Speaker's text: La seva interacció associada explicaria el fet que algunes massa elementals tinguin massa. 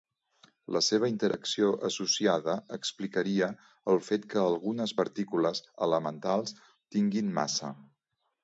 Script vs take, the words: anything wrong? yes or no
yes